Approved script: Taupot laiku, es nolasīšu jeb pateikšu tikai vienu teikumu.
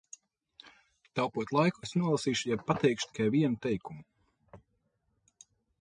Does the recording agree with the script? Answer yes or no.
yes